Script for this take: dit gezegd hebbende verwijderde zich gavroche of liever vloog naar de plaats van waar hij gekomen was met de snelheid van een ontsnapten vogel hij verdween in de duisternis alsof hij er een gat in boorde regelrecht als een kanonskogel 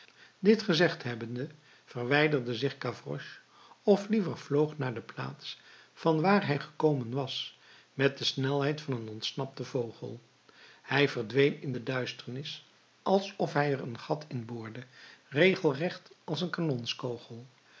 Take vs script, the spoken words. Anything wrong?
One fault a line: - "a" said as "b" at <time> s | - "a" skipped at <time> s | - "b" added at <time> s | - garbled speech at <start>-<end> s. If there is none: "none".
none